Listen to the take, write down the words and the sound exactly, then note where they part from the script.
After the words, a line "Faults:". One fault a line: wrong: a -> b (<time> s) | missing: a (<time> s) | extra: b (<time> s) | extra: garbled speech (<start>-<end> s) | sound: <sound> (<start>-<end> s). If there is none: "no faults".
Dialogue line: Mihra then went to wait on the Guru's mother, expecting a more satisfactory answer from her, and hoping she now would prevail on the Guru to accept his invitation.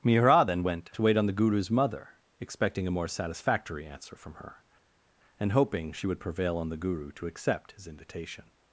Mihra then went to wait on the Guru's mother, expecting a more satisfactory answer from her, and hoping she would prevail on the Guru to accept his invitation.
Faults:
missing: now (6.1 s)